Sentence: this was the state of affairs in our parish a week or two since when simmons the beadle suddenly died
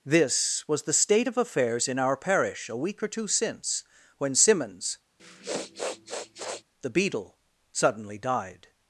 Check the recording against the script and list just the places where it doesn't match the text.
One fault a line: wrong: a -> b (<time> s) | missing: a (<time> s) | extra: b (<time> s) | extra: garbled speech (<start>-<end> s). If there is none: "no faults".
no faults